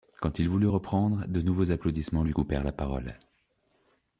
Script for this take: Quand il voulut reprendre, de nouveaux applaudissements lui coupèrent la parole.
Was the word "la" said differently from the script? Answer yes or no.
no